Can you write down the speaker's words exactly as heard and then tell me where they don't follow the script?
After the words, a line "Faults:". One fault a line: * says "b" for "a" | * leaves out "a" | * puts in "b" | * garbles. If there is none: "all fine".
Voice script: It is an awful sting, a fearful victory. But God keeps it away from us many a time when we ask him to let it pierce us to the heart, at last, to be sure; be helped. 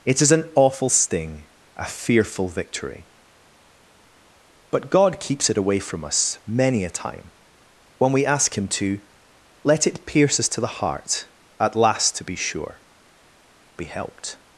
It is an awful sting, a fearful victory. But God keeps it away from us many a time when we ask him to let it pierce us to the heart, at last, to be sure; be helped.
Faults:
all fine